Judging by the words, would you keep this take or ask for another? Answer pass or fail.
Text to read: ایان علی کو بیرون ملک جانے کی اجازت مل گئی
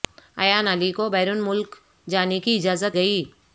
fail